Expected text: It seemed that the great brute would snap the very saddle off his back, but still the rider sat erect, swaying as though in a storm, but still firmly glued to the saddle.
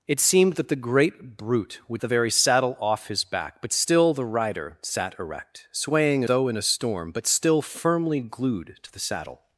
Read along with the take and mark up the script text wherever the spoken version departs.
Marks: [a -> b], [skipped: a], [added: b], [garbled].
It seemed that the great brute would [skipped: snap] the very saddle off his back, but still the rider sat erect, swaying [skipped: as] though in a storm, but still firmly glued to the saddle.